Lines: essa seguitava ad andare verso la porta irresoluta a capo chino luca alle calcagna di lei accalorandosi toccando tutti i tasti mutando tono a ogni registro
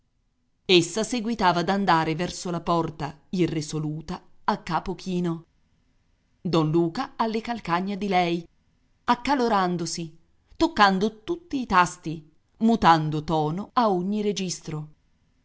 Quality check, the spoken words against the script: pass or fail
fail